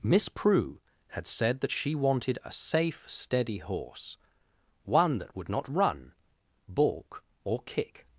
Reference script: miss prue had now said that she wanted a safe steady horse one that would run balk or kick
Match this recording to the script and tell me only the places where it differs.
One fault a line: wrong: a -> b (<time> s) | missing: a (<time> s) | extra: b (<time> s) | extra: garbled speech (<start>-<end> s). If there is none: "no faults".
missing: now (1.3 s)
extra: not (5.5 s)